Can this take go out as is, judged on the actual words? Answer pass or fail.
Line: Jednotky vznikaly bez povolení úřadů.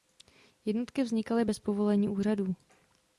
pass